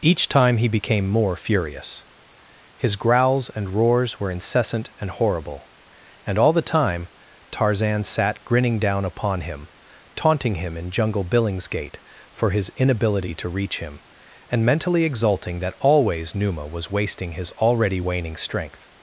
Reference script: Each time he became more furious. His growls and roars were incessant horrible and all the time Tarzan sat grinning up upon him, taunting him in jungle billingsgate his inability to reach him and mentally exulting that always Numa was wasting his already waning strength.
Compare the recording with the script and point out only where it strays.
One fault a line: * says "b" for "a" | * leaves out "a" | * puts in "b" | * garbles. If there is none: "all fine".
* puts in "and"
* says "down" for "up"
* puts in "for"